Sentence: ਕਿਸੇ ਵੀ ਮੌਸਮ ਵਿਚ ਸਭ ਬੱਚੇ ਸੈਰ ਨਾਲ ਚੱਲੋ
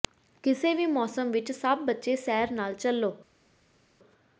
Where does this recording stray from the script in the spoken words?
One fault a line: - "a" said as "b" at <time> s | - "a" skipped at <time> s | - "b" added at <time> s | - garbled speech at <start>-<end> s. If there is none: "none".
none